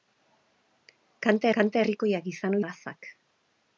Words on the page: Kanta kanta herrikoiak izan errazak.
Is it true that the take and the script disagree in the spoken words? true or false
false